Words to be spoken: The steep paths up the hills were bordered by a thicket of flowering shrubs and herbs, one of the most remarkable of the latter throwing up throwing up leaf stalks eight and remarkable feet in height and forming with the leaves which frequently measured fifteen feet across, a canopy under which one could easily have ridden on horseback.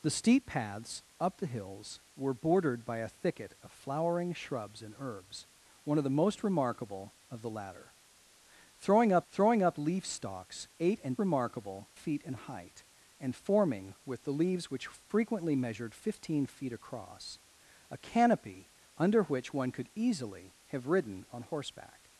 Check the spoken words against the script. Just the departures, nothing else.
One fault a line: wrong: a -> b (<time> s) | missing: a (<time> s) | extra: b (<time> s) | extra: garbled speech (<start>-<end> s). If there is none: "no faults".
no faults